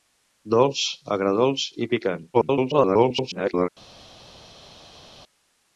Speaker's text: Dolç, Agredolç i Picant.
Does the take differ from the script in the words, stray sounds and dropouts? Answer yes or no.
yes